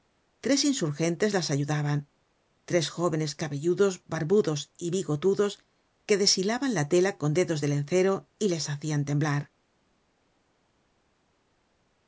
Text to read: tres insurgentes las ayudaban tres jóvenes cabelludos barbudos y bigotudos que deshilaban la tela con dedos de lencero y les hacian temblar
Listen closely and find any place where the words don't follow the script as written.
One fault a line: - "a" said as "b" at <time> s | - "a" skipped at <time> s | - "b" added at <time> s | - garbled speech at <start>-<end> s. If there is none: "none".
none